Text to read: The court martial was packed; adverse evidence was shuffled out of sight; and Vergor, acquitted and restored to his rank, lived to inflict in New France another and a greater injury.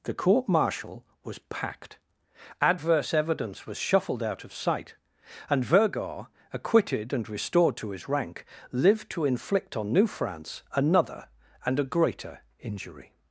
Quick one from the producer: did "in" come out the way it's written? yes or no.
no